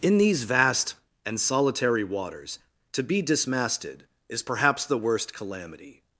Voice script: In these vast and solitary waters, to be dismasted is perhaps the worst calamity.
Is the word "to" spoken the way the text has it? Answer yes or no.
yes